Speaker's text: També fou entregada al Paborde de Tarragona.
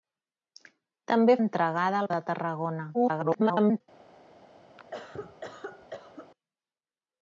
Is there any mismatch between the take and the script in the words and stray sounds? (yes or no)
yes